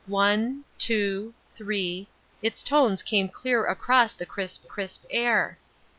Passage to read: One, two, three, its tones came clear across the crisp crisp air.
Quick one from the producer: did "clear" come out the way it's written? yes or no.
yes